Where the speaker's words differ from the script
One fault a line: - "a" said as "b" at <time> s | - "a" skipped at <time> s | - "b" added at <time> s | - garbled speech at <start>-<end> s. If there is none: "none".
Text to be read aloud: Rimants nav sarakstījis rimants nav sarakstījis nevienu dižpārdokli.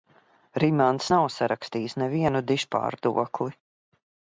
- "rimants nav sarakstījis" skipped at 2.0 s